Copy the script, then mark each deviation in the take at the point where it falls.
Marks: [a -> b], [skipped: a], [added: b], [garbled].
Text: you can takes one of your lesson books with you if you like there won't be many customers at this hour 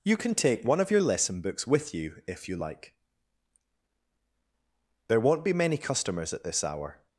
you can [takes -> take] one of your lesson books with you if you like there won't be many customers at this hour